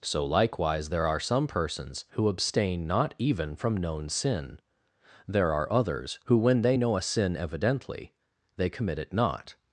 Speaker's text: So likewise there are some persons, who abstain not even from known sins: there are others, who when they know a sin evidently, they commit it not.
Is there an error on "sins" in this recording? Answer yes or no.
yes